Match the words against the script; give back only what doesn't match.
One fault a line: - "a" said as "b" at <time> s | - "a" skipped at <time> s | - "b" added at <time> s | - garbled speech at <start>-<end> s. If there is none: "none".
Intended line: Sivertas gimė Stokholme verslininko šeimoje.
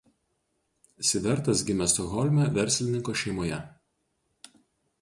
none